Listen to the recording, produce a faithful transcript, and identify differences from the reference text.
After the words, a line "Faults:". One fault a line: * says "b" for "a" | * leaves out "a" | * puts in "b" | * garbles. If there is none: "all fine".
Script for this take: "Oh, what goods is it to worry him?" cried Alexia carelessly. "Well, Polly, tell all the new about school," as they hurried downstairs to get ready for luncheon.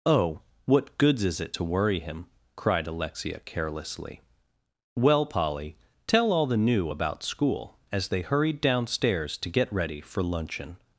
"Oh, what goods is it to worry him?" cried Alexia carelessly. "Well, Polly, tell all the new about school," as they hurried downstairs to get ready for luncheon.
Faults:
all fine